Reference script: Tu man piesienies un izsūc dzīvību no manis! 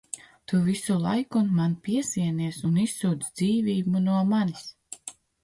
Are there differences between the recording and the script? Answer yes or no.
yes